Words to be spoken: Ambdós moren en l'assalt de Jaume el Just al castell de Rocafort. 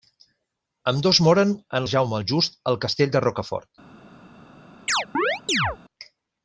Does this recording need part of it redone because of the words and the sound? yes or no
yes